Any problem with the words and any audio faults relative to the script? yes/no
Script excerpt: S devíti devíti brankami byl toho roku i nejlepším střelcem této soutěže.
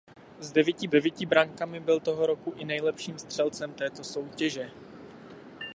no